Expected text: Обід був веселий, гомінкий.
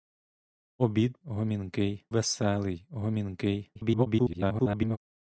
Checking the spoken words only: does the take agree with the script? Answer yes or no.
no